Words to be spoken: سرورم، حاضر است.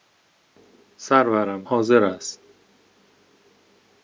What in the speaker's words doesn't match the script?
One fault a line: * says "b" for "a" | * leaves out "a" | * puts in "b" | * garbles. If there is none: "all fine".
all fine